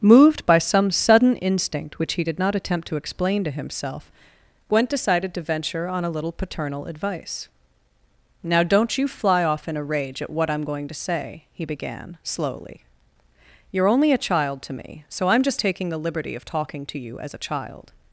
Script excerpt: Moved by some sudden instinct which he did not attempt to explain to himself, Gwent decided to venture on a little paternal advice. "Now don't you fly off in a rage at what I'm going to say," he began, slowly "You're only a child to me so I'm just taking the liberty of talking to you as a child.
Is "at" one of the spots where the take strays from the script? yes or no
no